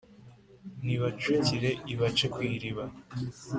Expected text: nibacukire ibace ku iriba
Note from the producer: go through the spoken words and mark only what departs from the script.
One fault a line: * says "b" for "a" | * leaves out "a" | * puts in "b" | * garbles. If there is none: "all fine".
all fine